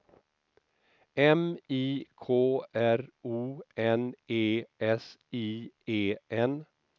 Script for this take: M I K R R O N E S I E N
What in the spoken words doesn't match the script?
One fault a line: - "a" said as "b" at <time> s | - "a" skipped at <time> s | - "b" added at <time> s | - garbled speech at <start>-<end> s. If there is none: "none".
- "R" skipped at 3.0 s